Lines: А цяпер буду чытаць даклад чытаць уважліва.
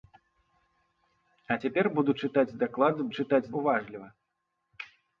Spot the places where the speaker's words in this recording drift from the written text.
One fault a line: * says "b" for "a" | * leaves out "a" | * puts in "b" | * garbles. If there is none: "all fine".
all fine